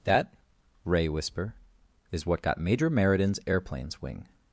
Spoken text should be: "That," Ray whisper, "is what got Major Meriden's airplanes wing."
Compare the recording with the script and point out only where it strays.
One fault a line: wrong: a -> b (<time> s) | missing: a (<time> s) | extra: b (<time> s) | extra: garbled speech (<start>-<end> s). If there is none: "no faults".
no faults